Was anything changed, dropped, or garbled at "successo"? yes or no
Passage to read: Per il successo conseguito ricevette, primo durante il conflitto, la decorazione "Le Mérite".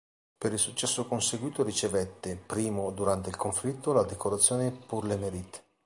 no